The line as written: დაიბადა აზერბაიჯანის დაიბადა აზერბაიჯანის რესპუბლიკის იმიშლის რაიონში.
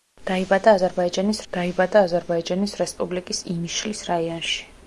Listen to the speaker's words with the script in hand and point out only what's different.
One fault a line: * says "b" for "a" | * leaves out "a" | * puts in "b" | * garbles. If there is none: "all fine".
all fine